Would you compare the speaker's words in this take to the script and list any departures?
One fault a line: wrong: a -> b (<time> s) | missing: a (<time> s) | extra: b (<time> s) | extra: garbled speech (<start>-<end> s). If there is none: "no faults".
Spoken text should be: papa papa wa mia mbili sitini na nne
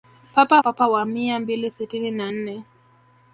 no faults